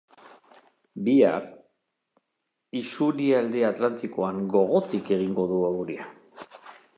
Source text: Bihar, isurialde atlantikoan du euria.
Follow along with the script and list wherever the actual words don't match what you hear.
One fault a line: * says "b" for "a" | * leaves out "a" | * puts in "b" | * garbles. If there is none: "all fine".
* puts in "gogotik egingo"